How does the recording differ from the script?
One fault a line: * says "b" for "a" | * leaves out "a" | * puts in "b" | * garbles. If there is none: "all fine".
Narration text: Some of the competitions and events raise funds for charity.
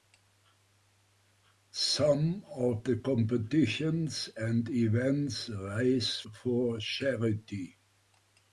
* leaves out "funds"